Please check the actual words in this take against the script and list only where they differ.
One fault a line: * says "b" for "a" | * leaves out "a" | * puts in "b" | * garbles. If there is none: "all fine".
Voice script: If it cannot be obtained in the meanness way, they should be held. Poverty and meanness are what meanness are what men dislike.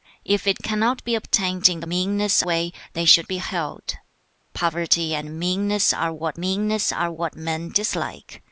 all fine